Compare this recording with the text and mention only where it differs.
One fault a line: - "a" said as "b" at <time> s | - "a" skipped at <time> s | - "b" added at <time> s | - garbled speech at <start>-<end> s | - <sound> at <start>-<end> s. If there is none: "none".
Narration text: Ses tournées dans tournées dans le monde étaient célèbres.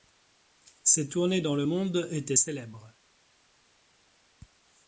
- "tournées dans" skipped at 1.5 s